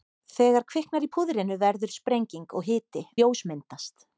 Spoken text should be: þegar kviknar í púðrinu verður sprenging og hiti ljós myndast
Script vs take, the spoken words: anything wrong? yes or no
no